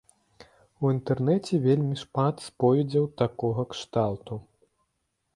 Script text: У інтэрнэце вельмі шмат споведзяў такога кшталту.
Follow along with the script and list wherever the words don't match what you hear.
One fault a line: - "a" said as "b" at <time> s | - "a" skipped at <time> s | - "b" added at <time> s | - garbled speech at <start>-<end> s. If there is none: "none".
none